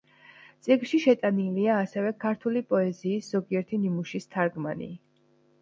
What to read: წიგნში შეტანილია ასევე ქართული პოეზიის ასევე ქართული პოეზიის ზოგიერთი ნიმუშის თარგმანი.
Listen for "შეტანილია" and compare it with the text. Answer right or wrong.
right